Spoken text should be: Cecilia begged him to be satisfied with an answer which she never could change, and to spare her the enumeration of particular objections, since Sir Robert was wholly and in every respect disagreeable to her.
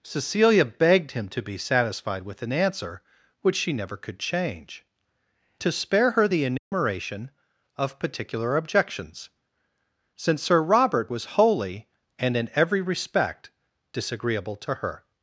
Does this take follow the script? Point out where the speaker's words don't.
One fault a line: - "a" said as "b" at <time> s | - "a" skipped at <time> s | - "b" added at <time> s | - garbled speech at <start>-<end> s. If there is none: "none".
- "and" skipped at 4.8 s